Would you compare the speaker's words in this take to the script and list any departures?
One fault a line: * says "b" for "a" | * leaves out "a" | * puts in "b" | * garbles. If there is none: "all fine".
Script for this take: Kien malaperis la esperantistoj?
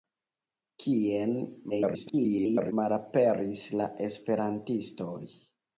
* garbles